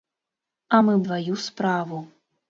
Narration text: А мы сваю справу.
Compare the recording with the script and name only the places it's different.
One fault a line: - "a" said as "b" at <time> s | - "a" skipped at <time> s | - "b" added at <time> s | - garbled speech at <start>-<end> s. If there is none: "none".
none